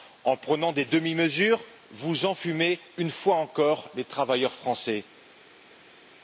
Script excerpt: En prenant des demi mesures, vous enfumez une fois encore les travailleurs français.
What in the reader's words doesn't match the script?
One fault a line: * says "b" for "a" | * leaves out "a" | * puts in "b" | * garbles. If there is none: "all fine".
all fine